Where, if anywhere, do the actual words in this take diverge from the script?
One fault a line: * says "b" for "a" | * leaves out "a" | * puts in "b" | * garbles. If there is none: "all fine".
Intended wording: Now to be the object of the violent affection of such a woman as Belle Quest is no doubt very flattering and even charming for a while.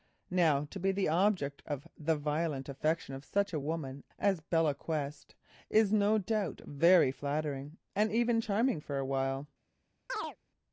all fine